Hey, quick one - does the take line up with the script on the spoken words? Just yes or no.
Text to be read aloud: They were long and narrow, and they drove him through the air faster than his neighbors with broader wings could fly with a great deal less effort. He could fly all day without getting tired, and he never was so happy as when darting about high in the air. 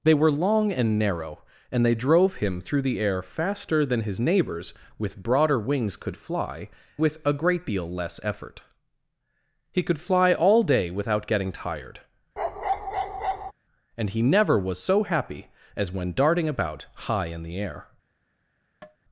yes